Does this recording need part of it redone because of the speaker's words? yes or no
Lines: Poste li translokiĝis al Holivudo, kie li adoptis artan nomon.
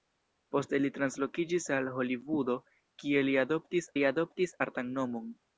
yes